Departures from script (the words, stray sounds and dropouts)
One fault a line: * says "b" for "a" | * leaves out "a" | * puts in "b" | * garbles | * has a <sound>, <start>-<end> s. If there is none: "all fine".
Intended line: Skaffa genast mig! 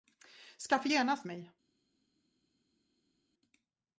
all fine